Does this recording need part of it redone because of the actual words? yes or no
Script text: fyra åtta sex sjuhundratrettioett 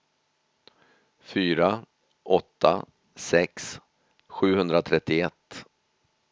no